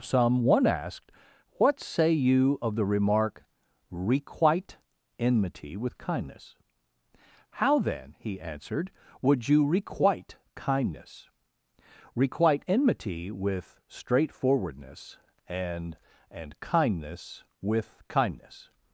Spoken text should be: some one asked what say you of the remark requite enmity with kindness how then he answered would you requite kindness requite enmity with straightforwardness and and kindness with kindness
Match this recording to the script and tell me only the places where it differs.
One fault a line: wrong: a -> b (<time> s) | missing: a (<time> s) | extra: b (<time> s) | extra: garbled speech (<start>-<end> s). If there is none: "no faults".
no faults